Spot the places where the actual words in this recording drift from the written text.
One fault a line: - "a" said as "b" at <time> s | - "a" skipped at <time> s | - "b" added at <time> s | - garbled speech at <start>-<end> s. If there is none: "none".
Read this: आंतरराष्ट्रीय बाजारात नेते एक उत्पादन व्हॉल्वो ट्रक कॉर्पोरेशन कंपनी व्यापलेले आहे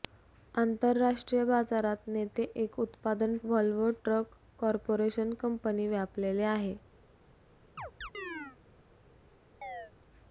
none